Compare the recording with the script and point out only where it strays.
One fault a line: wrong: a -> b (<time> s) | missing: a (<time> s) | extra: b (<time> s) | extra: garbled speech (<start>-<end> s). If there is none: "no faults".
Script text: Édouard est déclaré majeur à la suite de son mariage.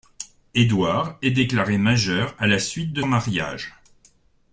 missing: son (3.0 s)